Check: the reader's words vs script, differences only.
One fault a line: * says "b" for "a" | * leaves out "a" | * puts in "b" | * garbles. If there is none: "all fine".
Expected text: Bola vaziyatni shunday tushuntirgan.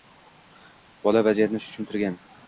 * leaves out "shunday"